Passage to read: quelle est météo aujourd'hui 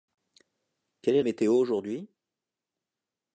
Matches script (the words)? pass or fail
pass